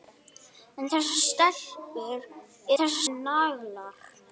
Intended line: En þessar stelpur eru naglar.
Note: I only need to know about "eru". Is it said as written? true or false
false